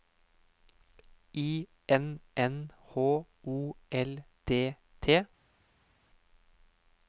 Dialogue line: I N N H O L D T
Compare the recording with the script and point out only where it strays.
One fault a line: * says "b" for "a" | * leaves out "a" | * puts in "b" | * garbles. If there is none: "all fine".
all fine